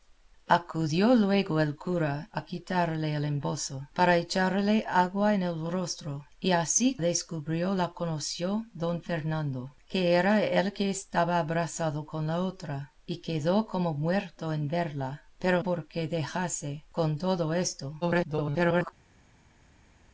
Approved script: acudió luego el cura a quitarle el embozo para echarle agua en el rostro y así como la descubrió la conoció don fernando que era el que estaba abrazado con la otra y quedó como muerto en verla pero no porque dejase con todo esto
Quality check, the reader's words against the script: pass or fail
fail